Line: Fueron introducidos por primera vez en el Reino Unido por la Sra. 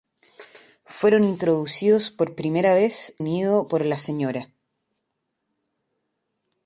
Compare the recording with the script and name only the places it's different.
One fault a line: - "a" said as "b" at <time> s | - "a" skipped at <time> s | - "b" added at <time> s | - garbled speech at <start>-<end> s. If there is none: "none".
- "en el Reino" skipped at 3.2 s